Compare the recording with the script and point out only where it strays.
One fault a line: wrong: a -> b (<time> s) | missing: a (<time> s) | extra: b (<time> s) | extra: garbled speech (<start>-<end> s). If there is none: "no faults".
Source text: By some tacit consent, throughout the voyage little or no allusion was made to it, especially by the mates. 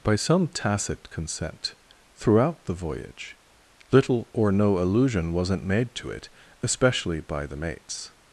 wrong: was -> wasn't (5.3 s)